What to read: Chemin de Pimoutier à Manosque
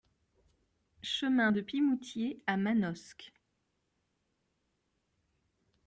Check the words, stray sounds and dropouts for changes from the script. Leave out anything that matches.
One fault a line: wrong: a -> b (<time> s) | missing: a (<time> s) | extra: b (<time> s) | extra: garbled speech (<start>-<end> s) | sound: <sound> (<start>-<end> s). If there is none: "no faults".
no faults